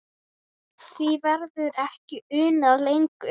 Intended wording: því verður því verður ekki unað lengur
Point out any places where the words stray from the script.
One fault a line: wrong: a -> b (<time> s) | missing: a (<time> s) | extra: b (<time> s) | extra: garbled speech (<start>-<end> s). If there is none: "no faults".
missing: því verður (1.8 s)